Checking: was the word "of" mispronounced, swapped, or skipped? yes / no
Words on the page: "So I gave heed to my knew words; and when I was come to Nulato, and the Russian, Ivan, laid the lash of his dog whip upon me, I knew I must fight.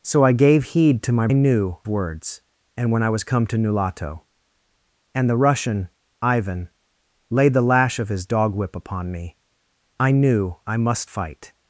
no